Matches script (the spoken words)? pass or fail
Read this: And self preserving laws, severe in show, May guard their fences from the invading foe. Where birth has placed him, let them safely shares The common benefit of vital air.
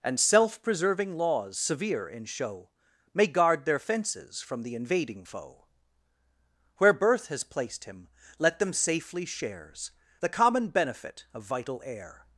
pass